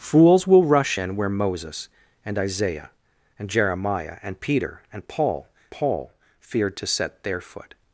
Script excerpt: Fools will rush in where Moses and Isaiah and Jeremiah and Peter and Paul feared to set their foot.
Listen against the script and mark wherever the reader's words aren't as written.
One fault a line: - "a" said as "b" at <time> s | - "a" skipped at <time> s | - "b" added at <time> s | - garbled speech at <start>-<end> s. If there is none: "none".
- "Paul" added at 5.7 s